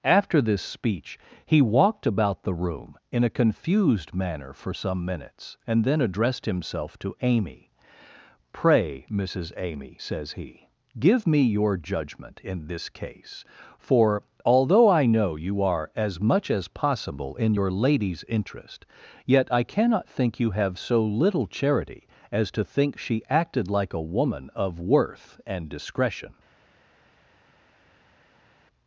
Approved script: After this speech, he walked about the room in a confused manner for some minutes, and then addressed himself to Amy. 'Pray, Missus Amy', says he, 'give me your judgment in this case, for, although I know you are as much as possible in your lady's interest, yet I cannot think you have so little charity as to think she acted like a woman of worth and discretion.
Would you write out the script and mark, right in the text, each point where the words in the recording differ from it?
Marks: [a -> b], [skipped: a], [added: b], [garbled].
After this speech, he walked about the room in a confused manner for some minutes, and then addressed himself to Amy. 'Pray, Missus Amy', says he, 'give me your judgment in this case, for, although I know you are as much as possible in your lady's interest, yet I cannot think you have so little charity as to think she acted like a woman of worth and discretion.